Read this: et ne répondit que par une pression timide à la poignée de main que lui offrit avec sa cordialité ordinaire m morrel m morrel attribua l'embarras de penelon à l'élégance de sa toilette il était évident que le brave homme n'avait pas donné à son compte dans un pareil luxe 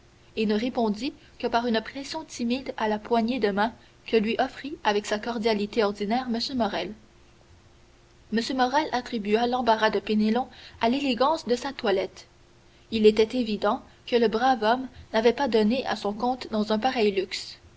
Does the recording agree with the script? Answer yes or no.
yes